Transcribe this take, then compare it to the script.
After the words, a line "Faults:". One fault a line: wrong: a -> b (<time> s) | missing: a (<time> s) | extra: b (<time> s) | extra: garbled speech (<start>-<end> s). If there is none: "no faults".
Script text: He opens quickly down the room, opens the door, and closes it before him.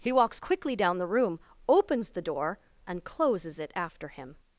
He walks quickly down the room, opens the door, and closes it after him.
Faults:
wrong: opens -> walks (0.1 s)
wrong: before -> after (3.7 s)